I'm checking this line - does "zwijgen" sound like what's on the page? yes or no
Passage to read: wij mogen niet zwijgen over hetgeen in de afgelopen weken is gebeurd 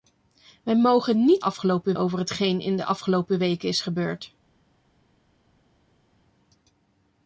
no